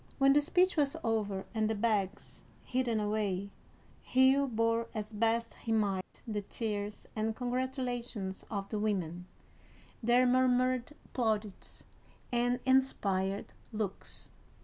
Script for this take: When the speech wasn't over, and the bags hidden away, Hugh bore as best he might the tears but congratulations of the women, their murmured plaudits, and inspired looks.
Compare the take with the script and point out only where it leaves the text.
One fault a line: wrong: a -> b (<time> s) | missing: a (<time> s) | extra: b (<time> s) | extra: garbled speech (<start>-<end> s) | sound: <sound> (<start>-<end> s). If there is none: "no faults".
wrong: wasn't -> was (0.8 s)
sound: dropout (6.0-6.1 s)
wrong: but -> and (7.2 s)